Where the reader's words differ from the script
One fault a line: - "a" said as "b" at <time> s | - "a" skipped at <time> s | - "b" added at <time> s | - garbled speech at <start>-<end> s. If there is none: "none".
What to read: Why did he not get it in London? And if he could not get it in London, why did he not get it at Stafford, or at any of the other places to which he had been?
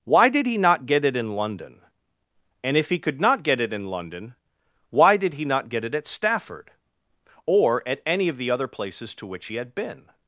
none